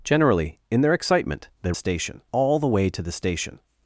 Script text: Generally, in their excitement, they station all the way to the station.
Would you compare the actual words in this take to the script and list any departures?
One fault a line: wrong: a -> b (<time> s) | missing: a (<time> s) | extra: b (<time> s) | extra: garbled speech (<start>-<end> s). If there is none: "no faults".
no faults